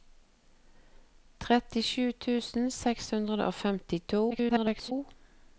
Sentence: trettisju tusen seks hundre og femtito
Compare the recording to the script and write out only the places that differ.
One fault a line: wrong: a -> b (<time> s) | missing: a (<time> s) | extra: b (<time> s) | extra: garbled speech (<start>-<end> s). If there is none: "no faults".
extra: garbled speech (4.3-4.9 s)